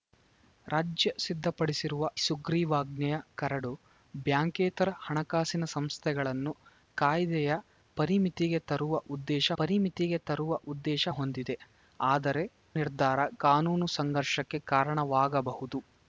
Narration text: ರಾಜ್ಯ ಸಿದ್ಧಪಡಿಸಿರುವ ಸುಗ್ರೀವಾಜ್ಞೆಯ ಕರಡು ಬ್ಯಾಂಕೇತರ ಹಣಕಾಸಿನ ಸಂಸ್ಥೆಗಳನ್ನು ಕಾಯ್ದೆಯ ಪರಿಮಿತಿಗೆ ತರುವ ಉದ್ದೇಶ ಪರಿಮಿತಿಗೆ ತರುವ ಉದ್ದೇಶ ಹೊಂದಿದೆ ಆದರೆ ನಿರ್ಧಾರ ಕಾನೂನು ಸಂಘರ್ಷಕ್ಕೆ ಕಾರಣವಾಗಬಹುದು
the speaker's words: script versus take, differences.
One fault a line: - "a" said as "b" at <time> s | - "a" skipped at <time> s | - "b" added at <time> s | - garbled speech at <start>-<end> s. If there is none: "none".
none